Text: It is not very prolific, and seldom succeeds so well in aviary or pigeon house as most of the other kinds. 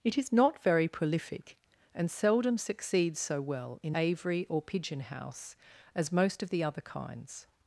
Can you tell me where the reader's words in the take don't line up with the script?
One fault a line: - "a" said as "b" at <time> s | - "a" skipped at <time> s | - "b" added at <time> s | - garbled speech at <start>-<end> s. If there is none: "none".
none